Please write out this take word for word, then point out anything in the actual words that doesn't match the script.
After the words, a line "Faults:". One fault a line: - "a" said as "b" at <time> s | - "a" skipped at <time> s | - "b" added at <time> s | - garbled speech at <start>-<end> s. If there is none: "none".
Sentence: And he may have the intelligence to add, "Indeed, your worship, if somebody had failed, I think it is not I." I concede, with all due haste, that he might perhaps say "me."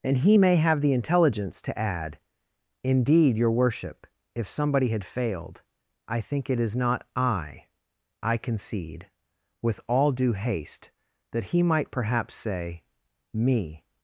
And he may have the intelligence to add, "Indeed, your worship, if somebody had failed, I think it is not I." I concede, with all due haste, that he might perhaps say "me."
Faults:
none